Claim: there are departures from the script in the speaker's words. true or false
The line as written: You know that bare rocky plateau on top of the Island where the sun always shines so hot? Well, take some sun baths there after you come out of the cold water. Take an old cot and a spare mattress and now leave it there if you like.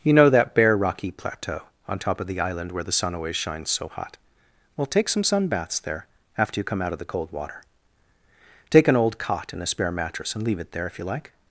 true